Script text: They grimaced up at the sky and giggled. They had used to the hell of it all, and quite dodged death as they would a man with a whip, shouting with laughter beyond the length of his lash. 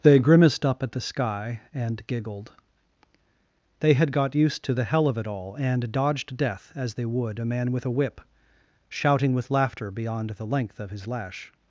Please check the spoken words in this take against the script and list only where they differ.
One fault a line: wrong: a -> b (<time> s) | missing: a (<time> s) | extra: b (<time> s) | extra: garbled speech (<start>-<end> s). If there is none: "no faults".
extra: got (4.1 s)
missing: quite (5.9 s)